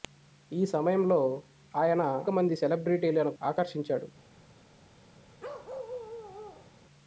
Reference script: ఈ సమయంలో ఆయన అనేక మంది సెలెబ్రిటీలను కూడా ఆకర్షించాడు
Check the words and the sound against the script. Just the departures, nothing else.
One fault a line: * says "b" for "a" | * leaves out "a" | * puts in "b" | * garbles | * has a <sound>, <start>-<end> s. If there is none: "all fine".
* leaves out "అనేక"
* leaves out "కూడా"
* has a bark, 5.4-6.7 s